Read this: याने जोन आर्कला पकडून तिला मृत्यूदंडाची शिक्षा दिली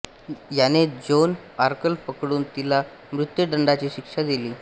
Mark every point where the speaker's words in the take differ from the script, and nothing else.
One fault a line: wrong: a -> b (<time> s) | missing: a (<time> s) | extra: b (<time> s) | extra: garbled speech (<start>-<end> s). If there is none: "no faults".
no faults